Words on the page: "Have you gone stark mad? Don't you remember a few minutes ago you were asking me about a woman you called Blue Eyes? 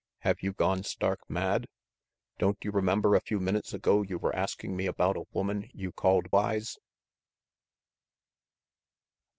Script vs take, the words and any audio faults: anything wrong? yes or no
yes